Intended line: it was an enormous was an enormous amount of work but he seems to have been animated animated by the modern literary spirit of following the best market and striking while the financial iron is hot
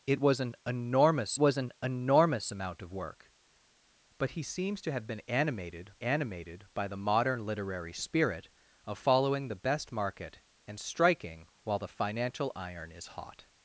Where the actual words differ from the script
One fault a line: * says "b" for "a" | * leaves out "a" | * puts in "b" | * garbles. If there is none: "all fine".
all fine